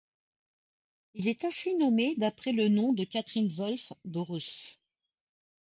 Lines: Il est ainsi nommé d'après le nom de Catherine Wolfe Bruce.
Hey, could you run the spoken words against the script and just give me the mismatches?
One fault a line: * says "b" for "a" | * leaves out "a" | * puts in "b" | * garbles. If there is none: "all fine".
all fine